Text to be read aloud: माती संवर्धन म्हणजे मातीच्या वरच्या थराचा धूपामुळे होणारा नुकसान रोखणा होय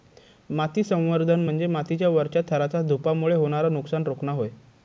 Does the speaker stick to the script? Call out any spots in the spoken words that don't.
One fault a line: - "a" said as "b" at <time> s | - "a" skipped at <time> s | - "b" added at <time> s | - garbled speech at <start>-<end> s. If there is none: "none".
none